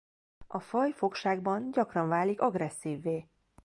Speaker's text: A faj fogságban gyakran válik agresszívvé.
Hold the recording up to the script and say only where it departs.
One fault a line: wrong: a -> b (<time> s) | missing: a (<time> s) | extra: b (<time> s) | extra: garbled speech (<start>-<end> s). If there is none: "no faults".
no faults